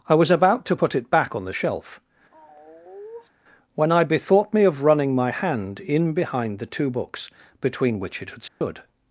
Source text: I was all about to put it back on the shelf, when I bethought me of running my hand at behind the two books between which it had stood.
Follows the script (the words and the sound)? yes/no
no